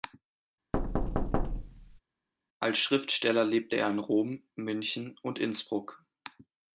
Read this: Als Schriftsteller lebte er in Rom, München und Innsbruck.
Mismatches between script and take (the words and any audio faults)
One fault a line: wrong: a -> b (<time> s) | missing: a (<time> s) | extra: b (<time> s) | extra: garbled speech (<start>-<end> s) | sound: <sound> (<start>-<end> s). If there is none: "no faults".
sound: thud (0.7-2.0 s)